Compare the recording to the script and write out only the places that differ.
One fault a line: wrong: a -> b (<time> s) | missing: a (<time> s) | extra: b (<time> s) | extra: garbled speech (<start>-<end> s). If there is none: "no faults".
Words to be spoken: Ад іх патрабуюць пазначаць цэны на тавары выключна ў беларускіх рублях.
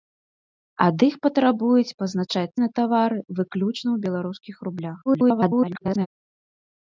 missing: цэны (2.6 s)
extra: garbled speech (5.1-6.1 s)